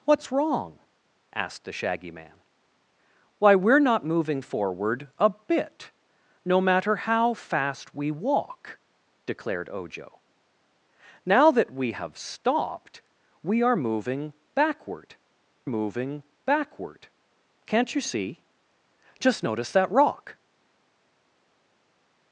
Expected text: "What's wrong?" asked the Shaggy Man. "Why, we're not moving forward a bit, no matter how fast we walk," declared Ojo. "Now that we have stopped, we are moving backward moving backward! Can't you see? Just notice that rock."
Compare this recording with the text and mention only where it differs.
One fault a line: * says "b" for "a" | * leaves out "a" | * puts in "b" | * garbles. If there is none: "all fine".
all fine